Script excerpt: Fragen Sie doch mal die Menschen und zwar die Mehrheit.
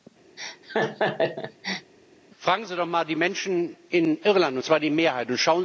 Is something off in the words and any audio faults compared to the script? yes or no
yes